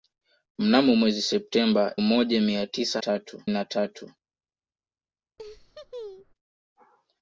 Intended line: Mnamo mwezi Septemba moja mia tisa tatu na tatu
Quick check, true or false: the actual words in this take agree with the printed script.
true